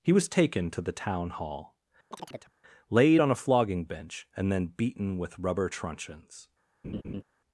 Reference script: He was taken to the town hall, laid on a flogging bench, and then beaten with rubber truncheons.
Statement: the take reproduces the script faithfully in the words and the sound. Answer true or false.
false